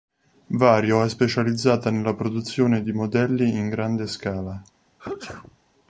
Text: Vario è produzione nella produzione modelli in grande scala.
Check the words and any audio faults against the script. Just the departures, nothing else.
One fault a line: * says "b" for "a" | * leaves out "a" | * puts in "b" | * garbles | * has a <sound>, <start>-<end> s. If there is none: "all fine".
* says "specializzata" for "produzione"
* puts in "di"
* has a sneeze, 5.0-5.6 s